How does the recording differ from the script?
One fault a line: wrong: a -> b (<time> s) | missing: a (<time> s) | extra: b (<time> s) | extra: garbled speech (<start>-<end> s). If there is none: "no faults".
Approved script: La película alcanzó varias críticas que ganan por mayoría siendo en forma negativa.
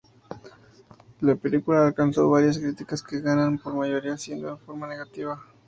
no faults